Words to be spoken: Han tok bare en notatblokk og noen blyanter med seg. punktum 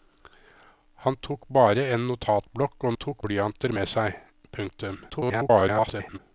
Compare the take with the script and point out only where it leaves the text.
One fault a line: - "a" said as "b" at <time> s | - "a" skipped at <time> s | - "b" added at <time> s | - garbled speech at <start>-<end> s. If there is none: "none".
- "noen" said as "tok" at 2.9 s
- garbled speech at 5.1-6.2 s